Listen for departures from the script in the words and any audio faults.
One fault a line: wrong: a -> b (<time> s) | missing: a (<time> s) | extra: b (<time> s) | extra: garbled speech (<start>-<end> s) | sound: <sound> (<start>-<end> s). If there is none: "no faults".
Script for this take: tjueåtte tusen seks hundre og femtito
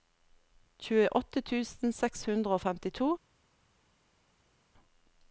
no faults